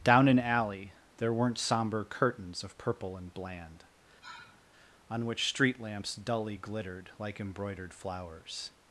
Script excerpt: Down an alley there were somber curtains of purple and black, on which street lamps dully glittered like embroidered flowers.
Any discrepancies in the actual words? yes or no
yes